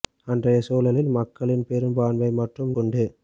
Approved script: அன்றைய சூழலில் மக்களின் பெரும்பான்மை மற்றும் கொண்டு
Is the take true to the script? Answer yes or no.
yes